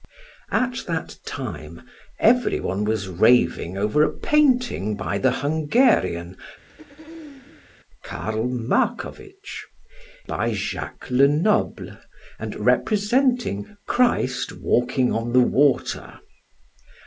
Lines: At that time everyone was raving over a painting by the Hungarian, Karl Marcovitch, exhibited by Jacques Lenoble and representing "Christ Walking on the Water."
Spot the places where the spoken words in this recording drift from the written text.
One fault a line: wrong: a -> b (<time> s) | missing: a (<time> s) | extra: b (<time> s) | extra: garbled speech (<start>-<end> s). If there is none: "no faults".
missing: exhibited (9.6 s)